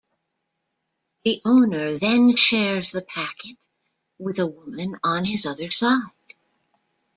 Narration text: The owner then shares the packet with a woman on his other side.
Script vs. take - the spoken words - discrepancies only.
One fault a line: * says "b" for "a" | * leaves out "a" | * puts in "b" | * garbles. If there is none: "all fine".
all fine